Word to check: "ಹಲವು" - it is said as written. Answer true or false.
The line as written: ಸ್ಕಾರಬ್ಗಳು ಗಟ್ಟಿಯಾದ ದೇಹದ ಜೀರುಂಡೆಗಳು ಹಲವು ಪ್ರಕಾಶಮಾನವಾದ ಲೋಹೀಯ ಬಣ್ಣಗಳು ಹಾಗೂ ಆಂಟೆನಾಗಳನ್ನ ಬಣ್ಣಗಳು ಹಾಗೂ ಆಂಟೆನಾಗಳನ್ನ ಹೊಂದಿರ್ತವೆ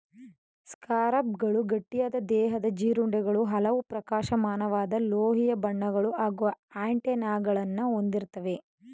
true